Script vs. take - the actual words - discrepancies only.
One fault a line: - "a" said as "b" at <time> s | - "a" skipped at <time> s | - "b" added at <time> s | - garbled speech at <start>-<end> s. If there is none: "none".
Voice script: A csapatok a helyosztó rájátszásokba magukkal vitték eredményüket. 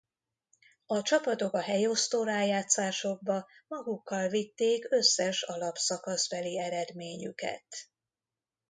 - "összes alapszakaszbeli" added at 4.9 s